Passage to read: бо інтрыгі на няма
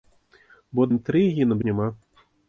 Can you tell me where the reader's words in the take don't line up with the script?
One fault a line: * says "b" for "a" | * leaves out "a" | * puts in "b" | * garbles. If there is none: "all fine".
all fine